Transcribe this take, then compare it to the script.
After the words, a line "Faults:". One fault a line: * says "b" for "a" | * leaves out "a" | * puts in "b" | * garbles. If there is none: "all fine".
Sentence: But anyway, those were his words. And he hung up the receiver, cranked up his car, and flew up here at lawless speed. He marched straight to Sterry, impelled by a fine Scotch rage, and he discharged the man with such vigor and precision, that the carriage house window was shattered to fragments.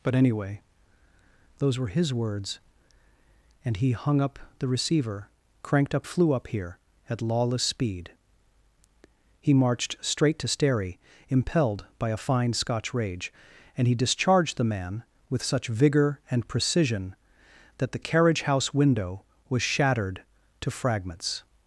But anyway, those were his words. And he hung up the receiver, cranked up flew up here at lawless speed. He marched straight to Sterry, impelled by a fine Scotch rage, and he discharged the man with such vigor and precision, that the carriage house window was shattered to fragments.
Faults:
* leaves out "his car and"